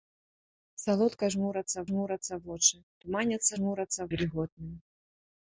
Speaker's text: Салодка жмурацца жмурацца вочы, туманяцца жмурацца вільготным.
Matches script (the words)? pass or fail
pass